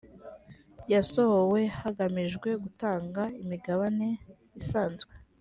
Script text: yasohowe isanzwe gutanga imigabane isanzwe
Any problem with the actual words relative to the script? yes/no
yes